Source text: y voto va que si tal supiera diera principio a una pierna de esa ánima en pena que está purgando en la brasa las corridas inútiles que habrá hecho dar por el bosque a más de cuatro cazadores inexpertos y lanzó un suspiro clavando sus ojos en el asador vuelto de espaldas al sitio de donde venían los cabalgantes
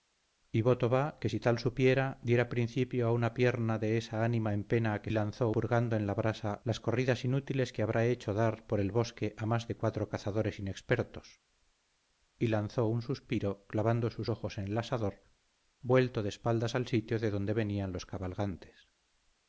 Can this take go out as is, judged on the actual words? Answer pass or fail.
fail